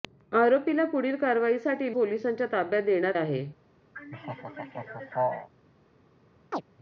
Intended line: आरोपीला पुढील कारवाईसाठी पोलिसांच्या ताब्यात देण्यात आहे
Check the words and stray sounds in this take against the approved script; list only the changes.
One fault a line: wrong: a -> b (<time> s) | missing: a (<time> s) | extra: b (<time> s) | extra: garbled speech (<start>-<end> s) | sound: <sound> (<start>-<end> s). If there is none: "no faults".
sound: laugh (3.9-5.5 s)
sound: chirp (6.5-6.6 s)